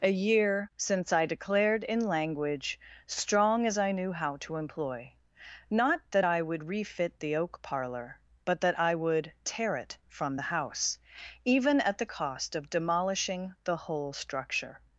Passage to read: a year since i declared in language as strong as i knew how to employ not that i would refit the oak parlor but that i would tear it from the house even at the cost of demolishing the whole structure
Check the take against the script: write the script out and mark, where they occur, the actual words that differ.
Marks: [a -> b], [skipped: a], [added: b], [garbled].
a year since i declared in language [skipped: as] strong as i knew how to employ not that i would refit the oak parlor but that i would tear it from the house even at the cost of demolishing the whole structure